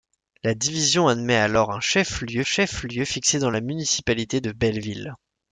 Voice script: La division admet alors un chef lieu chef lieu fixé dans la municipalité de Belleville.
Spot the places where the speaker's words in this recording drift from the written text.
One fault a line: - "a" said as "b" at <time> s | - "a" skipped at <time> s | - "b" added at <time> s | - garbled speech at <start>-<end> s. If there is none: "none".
none